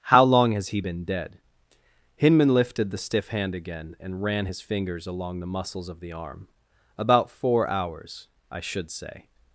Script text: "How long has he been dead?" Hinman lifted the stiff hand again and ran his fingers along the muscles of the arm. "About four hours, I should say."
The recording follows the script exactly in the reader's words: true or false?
true